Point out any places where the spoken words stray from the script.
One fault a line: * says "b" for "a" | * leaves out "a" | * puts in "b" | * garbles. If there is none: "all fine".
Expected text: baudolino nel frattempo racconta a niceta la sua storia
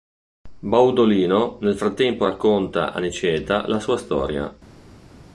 all fine